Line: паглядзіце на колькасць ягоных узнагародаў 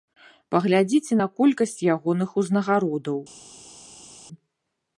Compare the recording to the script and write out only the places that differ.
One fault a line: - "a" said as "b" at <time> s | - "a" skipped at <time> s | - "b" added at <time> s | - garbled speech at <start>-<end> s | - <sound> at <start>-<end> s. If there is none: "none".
none